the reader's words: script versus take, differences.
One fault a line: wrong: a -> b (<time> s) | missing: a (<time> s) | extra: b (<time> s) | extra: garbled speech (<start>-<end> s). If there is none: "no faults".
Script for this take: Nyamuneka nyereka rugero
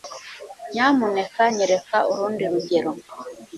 extra: urundi (2.1 s)